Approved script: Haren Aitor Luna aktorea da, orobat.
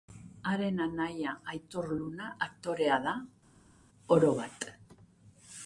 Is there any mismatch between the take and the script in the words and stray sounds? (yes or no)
yes